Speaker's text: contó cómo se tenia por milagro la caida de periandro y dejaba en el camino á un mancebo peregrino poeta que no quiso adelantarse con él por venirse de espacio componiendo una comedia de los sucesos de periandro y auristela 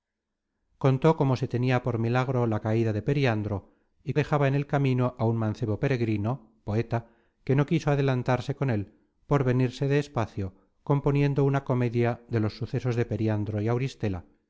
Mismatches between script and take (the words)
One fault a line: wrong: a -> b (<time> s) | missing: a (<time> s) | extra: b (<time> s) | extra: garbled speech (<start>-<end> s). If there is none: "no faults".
no faults